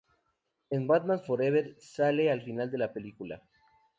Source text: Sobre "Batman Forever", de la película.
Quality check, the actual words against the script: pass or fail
fail